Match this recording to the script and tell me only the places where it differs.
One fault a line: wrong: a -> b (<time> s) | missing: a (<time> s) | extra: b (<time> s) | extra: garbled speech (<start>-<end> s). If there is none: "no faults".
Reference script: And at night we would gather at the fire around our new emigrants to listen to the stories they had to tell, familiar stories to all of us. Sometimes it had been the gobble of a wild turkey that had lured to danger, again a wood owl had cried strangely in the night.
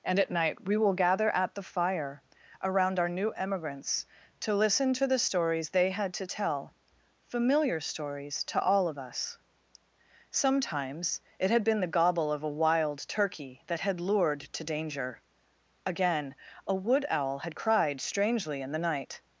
wrong: would -> will (0.8 s)